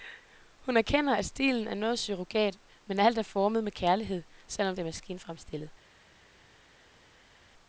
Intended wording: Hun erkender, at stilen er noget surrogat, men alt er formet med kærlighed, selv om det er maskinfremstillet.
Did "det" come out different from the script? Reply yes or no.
no